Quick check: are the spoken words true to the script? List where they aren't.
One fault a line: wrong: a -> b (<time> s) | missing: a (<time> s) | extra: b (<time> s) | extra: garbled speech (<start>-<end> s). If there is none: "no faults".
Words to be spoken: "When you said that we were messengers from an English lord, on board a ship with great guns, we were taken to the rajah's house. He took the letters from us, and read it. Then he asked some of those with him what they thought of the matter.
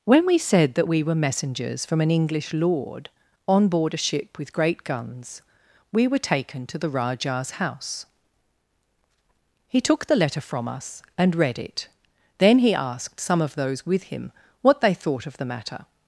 wrong: you -> we (0.2 s)
wrong: letters -> letter (10.2 s)